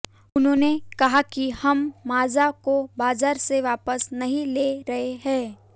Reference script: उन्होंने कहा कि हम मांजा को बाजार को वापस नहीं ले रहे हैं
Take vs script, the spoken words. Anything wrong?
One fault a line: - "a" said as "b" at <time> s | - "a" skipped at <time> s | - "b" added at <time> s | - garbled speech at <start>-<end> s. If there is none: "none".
- "को" said as "से" at 3.4 s